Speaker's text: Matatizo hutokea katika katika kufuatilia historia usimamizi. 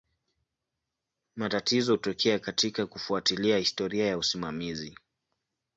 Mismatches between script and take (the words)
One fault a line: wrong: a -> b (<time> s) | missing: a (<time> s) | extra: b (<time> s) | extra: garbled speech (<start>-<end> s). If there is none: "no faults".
missing: katika (2.9 s)
extra: ya (4.1 s)